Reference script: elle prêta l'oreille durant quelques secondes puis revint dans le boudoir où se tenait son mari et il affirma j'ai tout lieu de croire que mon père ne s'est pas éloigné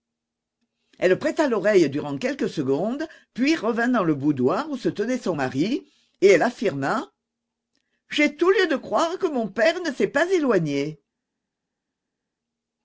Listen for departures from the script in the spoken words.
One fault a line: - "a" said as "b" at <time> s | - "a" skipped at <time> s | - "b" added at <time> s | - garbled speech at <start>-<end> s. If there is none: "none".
- "il" said as "elle" at 6.3 s